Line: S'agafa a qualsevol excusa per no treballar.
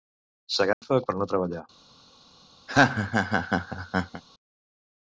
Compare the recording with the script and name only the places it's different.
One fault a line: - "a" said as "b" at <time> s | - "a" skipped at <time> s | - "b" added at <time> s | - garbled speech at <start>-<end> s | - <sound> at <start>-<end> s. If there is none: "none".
- dropout at 0.7-0.8 s
- "qualsevol excusa" skipped at 1.0 s
- laugh at 2.7-4.2 s